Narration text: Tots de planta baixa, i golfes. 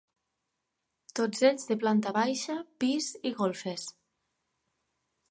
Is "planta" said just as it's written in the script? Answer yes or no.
yes